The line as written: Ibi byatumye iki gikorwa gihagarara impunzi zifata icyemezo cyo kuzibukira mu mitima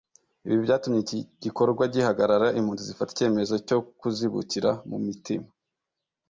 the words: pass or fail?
pass